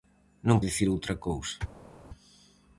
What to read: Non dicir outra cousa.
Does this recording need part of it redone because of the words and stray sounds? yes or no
no